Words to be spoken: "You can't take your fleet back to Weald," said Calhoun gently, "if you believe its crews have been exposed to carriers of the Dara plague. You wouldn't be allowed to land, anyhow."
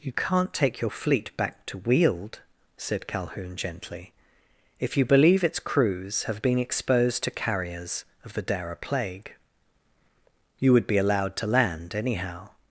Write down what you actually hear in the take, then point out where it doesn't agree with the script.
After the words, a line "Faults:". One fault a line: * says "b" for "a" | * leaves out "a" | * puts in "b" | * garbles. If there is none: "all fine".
"You can't take your fleet back to Weald," said Calhoun gently, "if you believe its crews have been exposed to carriers of the Dara plague. You would be allowed to land, anyhow."
Faults:
* says "would" for "wouldn't"